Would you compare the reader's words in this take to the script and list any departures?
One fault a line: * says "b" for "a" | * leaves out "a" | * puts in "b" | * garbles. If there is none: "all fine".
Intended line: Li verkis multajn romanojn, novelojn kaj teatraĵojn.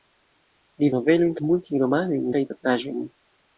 * says "novelojn" for "verkis"
* leaves out "novelojn"